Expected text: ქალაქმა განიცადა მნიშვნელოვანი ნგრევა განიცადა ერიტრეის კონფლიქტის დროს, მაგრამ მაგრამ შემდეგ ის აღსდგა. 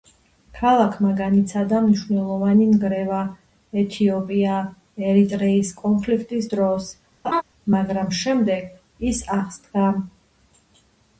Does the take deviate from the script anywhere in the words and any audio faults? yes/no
yes